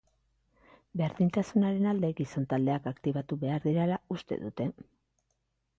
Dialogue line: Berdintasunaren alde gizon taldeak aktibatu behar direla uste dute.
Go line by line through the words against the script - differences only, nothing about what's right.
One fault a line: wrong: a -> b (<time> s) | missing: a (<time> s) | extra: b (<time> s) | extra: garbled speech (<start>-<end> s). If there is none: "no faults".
no faults